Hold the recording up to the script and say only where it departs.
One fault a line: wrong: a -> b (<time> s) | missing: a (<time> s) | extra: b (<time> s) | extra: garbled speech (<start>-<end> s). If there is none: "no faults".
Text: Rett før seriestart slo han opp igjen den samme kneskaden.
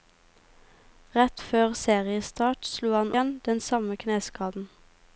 missing: opp (3.1 s)